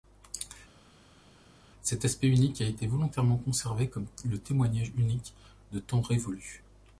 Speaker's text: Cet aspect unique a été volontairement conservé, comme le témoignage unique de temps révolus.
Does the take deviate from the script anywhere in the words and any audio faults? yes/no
no